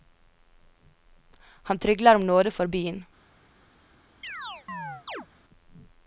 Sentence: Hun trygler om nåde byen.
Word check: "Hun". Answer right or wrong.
wrong